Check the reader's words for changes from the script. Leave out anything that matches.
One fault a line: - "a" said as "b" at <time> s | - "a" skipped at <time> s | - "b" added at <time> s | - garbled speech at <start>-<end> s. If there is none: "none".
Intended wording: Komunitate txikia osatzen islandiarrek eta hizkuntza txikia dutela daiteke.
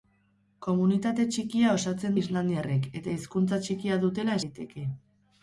none